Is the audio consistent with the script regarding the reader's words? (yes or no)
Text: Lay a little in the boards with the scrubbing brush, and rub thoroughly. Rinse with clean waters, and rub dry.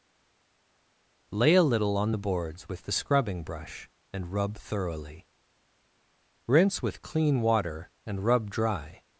no